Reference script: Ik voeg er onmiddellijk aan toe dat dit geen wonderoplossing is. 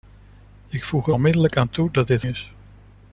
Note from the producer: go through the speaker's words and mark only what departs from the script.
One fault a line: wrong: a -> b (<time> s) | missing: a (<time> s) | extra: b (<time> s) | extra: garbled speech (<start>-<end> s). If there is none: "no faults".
missing: geen wonderoplossing (2.2 s)